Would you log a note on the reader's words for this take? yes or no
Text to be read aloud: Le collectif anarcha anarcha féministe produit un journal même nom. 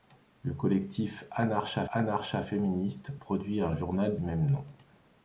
no